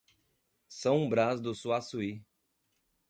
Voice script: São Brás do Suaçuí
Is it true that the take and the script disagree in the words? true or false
false